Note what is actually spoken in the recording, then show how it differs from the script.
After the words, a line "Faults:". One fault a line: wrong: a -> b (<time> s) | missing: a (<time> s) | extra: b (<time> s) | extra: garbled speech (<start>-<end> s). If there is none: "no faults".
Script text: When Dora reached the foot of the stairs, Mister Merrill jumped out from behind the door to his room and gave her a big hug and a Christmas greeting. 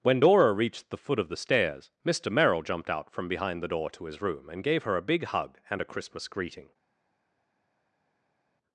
When Dora reached the foot of the stairs, Mister Merrill jumped out from behind the door to his room and gave her a big hug and a Christmas greeting.
Faults:
no faults